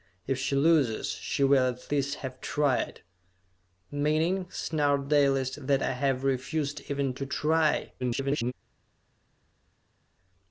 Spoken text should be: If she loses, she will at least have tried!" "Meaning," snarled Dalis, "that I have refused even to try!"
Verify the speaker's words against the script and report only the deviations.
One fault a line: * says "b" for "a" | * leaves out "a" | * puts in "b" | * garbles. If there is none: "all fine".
* garbles